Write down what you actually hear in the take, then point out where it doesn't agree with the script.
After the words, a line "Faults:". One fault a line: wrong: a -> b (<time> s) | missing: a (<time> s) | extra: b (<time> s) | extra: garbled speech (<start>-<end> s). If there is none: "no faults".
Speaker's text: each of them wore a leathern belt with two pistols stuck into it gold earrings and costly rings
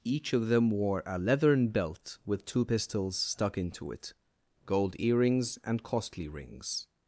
each of them wore a leathern belt with two pistols stuck into it gold earrings and costly rings
Faults:
no faults